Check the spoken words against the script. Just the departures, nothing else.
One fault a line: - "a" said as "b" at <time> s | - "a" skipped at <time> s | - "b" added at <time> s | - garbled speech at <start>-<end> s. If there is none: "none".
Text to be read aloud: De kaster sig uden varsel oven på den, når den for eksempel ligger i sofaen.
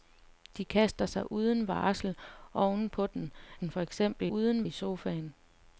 - "når" skipped at 3.3 s
- "ligger" said as "uden" at 4.3 s